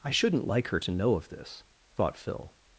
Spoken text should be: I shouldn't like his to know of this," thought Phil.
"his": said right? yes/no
no